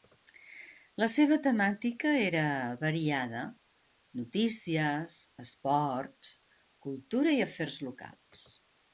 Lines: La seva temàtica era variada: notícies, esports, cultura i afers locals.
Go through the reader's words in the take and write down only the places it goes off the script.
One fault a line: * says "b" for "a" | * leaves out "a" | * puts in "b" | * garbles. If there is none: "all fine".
all fine